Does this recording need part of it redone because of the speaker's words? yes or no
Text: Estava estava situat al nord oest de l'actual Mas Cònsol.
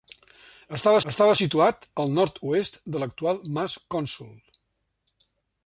no